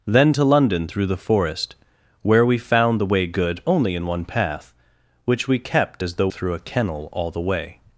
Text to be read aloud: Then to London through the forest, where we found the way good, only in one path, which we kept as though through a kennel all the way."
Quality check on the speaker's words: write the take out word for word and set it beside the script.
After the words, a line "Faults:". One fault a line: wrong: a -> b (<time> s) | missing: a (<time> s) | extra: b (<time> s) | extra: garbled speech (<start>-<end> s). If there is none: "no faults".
Then to London through the forest, where we found the way good, only in one path, which we kept as though through a kennel all the way."
Faults:
no faults